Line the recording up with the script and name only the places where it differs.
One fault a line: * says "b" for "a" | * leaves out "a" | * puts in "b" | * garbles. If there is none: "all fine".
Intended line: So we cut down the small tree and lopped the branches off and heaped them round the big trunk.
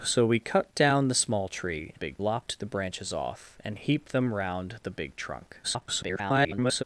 * says "big" for "and"
* garbles